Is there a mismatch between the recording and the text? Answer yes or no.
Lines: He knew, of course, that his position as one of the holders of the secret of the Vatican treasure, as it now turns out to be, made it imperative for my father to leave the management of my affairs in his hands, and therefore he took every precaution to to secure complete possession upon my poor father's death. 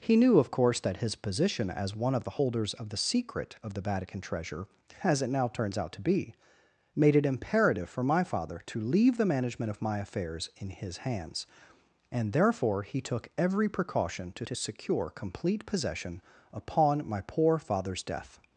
no